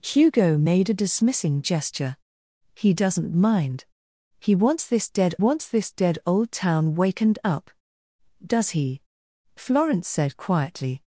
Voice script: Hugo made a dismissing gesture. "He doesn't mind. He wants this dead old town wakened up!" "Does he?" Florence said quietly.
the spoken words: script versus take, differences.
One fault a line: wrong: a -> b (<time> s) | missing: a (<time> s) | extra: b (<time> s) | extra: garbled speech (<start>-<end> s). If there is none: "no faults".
extra: wants this dead (5.4 s)